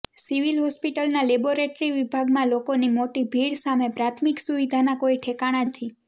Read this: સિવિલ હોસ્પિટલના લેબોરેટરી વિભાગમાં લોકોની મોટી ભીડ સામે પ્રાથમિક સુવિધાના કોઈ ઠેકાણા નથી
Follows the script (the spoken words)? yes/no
yes